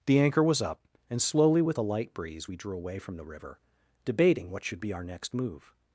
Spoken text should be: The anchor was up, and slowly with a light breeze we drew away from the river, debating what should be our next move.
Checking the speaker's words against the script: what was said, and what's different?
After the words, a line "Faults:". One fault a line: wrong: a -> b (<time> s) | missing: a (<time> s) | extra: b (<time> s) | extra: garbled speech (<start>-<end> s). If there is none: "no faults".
The anchor was up, and slowly with a light breeze we drew away from the river, debating what should be our next move.
Faults:
no faults